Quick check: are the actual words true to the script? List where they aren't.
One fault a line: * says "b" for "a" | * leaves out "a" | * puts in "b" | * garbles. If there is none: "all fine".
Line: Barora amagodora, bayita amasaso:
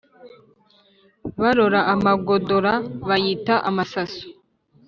all fine